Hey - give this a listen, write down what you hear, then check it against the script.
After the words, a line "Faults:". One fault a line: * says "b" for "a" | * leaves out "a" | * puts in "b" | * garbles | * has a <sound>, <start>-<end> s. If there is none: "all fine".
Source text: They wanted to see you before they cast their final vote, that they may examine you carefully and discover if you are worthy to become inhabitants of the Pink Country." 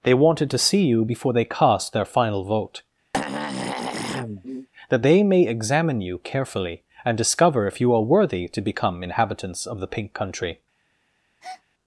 They wanted to see you before they cast their final vote, that they may examine you carefully and discover if you are worthy to become inhabitants of the Pink Country."
Faults:
* has a throat clearing, 3.1-4.7 s
* has a breath, 11.4-11.6 s